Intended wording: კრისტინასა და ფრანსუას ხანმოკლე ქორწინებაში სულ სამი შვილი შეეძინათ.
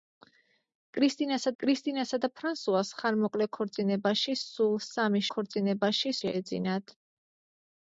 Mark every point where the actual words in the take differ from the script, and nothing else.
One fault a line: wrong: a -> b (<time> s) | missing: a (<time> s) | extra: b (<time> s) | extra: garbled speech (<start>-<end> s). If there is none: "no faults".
extra: კრისტინასა (1.6 s)
wrong: შვილი -> ქორწინებაში (5.4 s)